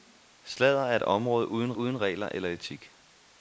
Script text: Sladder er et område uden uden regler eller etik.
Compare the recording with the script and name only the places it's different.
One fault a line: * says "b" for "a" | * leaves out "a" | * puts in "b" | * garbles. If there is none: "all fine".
all fine